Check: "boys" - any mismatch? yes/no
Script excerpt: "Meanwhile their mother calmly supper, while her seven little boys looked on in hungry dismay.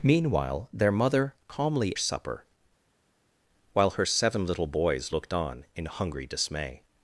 no